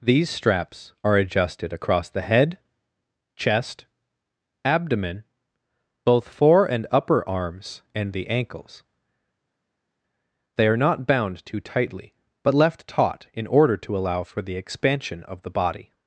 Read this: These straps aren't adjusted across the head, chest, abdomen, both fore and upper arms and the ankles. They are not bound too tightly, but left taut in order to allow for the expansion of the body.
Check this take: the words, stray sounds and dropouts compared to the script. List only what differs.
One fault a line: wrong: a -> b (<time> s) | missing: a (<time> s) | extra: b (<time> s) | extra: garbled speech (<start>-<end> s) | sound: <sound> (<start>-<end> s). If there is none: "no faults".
wrong: aren't -> are (1.0 s)